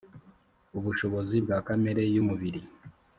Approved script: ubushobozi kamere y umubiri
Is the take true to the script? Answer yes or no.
no